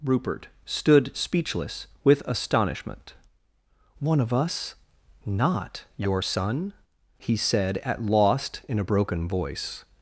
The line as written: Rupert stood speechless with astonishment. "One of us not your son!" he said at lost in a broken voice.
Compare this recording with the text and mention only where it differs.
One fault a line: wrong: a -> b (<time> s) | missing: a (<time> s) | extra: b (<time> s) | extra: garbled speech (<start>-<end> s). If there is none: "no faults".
no faults